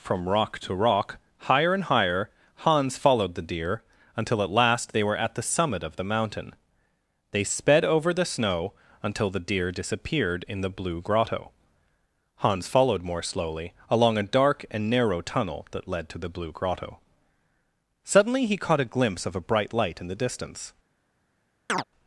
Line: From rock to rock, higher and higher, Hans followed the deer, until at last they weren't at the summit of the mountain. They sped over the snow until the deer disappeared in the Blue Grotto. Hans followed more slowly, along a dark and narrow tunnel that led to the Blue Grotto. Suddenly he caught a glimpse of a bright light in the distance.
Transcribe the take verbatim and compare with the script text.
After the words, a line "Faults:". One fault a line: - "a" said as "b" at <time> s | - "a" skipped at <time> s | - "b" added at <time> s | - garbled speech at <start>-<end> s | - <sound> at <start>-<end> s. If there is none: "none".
From rock to rock, higher and higher, Hans followed the deer, until at last they were at the summit of the mountain. They sped over the snow until the deer disappeared in the Blue Grotto. Hans followed more slowly, along a dark and narrow tunnel that led to the Blue Grotto. Suddenly he caught a glimpse of a bright light in the distance.
Faults:
- "weren't" said as "were" at 5.0 s
- chirp at 21.7-21.8 s